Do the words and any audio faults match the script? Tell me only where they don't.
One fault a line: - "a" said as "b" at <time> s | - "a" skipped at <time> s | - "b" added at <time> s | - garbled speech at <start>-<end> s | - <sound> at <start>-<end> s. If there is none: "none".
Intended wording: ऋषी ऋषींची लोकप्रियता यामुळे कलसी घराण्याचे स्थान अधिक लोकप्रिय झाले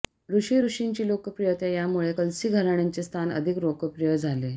none